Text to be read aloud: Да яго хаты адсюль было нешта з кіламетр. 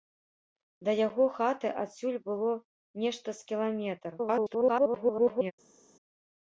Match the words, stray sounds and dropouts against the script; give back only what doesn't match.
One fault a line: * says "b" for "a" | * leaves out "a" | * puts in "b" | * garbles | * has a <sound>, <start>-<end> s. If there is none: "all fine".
* garbles